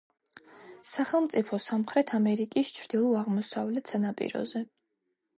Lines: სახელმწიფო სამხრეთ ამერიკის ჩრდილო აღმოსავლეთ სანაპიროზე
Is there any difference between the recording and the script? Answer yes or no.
no